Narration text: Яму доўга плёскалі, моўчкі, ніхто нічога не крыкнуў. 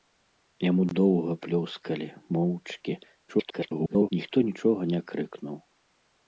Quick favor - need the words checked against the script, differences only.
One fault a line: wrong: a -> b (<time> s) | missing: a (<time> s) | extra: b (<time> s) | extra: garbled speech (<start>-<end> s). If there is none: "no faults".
extra: garbled speech (3.3-4.1 s)